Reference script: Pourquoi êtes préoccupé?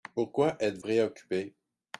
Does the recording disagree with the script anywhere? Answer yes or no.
no